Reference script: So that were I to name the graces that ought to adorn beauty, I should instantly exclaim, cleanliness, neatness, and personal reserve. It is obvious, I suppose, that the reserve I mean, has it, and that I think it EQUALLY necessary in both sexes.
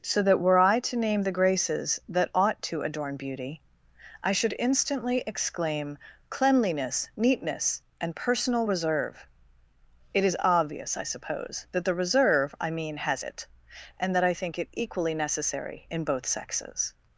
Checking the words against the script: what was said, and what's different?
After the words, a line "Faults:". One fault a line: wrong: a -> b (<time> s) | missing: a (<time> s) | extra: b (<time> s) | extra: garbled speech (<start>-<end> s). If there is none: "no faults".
So that were I to name the graces that ought to adorn beauty, I should instantly exclaim, cleanliness, neatness, and personal reserve. It is obvious, I suppose, that the reserve I mean, has it, and that I think it EQUALLY necessary in both sexes.
Faults:
no faults